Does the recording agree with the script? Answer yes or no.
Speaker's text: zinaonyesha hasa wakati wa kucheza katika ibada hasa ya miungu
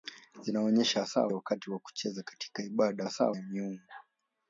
yes